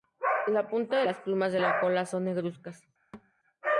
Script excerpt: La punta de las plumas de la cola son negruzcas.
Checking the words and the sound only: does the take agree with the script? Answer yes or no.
no